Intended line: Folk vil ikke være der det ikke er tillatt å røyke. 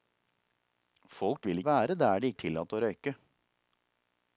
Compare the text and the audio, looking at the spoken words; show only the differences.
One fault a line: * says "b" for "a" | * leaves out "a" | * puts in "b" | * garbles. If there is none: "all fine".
* leaves out "ikke"
* leaves out "ikke"